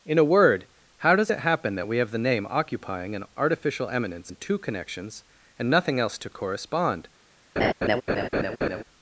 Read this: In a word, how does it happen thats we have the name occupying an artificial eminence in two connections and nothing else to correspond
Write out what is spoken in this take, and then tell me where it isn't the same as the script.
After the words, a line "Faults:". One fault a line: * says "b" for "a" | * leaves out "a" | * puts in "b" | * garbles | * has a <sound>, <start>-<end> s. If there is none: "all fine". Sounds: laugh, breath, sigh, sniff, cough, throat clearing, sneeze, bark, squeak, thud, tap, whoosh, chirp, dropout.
In a word, how does it happen that we have the name occupying an artificial eminence in two connections and nothing else to correspond
Faults:
* says "that" for "thats"
* has a laugh, 7.6-8.8 s